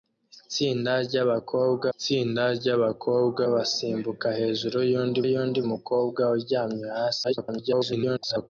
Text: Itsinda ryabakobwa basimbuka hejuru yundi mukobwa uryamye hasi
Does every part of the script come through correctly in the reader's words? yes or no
no